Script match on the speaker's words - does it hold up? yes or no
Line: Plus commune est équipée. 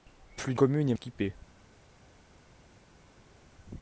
yes